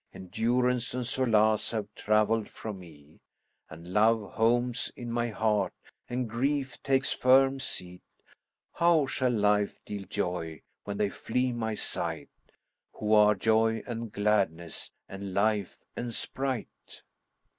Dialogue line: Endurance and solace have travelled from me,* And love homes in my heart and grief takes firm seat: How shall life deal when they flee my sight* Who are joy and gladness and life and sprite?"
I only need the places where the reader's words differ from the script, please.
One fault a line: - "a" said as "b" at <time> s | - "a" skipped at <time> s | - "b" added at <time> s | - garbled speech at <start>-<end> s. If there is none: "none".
- "joy" added at 10.1 s